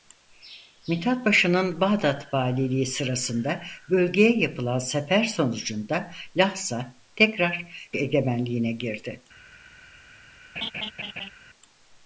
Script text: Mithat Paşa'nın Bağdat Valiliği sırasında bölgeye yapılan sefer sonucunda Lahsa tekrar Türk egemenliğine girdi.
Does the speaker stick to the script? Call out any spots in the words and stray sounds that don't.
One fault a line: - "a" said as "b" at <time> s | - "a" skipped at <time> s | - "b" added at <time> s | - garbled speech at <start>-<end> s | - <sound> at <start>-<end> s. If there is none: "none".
- "Türk" skipped at 7.9 s
- laugh at 10.6-11.3 s